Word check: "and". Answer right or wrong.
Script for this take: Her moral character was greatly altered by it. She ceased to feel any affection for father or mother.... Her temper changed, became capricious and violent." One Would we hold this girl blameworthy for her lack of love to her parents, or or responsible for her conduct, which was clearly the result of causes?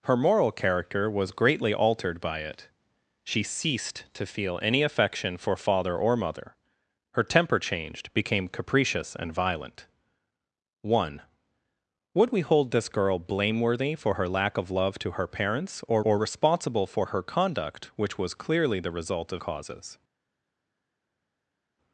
right